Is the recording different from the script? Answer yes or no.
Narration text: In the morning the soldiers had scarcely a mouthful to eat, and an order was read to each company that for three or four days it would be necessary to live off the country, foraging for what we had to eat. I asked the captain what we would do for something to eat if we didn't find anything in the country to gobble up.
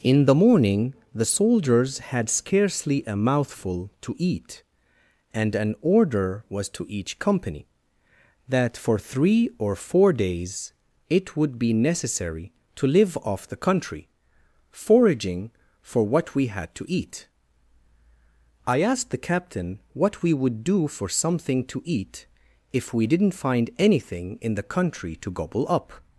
yes